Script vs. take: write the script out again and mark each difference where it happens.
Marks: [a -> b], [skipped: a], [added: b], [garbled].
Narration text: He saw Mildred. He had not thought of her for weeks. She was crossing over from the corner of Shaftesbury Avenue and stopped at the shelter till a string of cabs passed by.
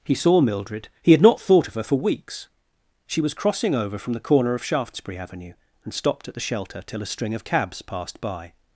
He saw Mildred. He had not thought of her for weeks. She was crossing over from the corner of Shaftesbury Avenue and stopped at the shelter till a string of cabs passed by.